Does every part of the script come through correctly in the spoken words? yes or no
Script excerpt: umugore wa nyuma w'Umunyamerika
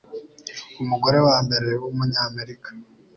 no